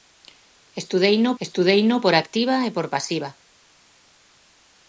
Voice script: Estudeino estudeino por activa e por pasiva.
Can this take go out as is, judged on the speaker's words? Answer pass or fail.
pass